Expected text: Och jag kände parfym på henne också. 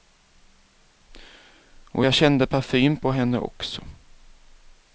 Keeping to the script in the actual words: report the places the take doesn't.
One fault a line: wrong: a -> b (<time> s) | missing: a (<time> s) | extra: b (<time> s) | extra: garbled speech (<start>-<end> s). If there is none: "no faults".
no faults